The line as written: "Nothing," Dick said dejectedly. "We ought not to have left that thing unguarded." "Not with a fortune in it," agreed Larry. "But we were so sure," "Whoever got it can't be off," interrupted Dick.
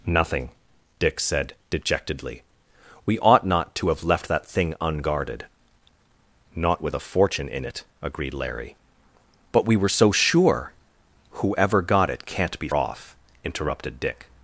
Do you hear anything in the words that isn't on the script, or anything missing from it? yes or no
no